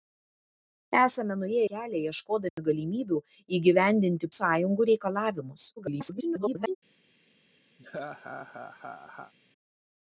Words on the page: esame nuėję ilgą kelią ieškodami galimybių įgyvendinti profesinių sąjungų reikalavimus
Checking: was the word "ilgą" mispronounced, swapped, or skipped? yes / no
yes